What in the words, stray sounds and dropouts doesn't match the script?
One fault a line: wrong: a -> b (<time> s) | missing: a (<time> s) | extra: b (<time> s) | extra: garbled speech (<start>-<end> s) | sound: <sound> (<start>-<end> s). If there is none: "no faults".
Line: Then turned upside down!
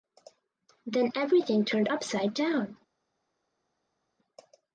extra: everything (1.1 s)